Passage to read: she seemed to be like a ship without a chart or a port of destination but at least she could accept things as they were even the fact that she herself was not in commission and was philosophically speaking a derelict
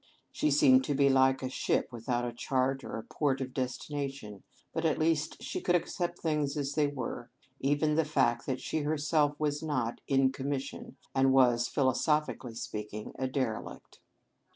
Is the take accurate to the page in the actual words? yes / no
yes